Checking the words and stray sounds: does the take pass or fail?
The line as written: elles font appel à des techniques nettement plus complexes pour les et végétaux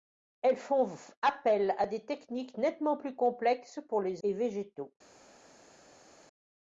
pass